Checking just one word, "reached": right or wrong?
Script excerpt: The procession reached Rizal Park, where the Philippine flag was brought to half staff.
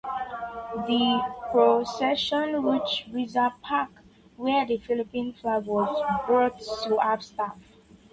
right